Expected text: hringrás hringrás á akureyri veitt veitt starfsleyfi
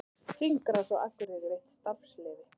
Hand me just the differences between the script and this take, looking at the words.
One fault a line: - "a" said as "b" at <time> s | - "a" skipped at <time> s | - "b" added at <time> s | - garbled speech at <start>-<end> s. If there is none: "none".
- "hringrás" skipped at 0.9 s
- "veitt" skipped at 1.7 s